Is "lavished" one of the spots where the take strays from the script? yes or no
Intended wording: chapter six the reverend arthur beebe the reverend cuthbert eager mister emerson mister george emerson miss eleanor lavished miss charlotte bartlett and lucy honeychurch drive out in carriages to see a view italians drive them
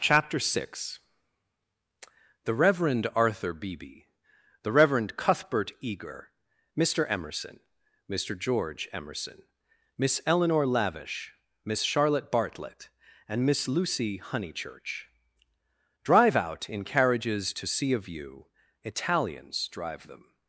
yes